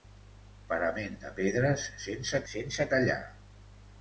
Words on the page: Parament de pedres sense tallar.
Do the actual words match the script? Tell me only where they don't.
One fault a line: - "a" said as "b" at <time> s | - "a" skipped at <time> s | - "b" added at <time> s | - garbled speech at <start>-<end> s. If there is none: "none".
- "sense" added at 2.5 s